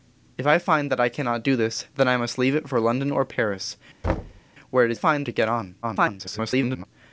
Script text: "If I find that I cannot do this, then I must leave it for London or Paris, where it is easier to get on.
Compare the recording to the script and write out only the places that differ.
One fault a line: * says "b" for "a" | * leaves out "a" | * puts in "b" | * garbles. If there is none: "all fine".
* says "find" for "easier"
* garbles